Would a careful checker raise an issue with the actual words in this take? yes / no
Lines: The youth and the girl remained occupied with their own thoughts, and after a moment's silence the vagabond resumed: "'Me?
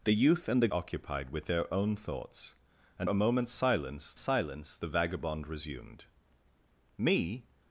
yes